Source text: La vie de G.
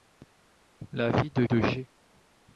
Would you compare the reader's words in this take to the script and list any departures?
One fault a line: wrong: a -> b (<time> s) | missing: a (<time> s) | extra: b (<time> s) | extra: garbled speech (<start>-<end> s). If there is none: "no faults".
extra: de (1.4 s)